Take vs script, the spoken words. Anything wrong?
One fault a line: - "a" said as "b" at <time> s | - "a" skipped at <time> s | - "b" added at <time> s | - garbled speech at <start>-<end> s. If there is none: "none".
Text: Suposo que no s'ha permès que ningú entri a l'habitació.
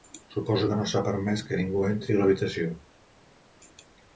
none